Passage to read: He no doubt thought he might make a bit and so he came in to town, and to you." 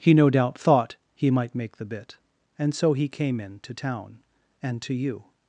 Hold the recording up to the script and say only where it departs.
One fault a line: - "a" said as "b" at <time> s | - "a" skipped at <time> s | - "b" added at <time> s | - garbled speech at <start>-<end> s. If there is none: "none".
- "a" said as "the" at 1.8 s